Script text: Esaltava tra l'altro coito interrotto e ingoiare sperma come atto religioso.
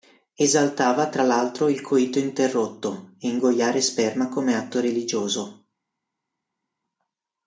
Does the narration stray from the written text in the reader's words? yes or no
yes